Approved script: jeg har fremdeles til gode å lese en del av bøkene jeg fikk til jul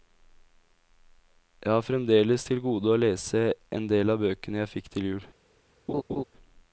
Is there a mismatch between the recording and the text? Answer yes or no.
no